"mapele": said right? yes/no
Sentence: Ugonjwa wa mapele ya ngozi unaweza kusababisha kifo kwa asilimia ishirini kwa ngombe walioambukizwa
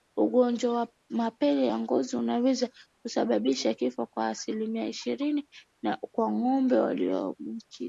yes